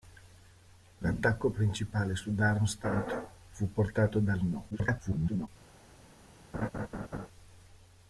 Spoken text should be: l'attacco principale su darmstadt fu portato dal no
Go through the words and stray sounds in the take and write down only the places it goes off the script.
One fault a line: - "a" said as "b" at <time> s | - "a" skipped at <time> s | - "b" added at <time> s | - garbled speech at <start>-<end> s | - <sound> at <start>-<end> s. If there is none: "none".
- garbled speech at 4.7-5.5 s
- laugh at 6.5-7.3 s